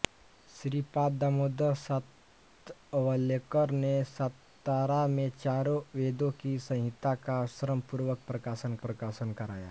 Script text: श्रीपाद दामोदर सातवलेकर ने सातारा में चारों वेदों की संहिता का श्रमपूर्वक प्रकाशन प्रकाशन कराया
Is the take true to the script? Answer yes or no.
yes